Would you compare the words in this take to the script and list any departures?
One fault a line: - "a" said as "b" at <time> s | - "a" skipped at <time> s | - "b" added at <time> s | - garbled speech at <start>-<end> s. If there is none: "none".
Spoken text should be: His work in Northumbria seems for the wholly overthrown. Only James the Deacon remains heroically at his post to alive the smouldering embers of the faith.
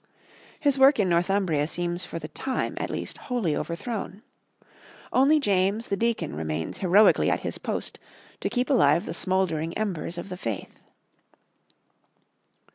- "time at least" added at 2.3 s
- "keep" added at 8.5 s